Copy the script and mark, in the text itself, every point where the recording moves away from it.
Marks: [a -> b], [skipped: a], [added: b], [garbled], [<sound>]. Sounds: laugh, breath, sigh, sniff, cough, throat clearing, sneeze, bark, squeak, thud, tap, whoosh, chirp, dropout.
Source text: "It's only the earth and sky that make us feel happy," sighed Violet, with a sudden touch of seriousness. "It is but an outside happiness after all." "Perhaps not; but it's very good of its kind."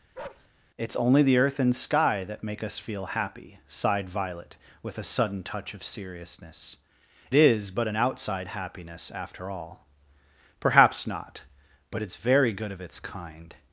[bark] "It's only the earth and sky that make us feel happy," sighed Violet, with a sudden touch of seriousness. [skipped: "It] is but an outside happiness after all." "Perhaps not; but it's very good of its kind."